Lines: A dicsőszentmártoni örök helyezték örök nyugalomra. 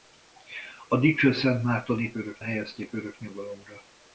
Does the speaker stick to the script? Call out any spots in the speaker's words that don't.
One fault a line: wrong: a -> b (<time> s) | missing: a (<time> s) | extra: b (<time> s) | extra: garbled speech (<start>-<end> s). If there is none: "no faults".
no faults